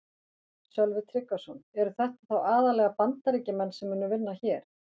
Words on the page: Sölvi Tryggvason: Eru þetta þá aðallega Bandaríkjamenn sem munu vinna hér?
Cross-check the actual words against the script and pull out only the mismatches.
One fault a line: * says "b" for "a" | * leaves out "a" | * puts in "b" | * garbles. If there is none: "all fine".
all fine